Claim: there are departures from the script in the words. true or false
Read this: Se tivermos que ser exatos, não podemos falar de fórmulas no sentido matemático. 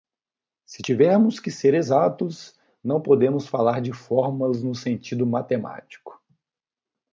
false